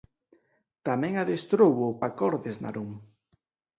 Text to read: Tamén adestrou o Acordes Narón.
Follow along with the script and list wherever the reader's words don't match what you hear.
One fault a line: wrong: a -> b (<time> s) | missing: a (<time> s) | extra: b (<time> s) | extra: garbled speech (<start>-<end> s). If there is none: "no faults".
no faults